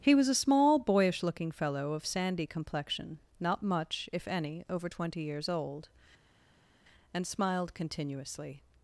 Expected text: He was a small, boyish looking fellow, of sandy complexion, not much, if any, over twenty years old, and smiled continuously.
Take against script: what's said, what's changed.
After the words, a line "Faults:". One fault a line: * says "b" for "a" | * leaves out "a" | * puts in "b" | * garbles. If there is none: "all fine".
He was a small, boyish looking fellow, of sandy complexion, not much, if any, over twenty years old, and smiled continuously.
Faults:
all fine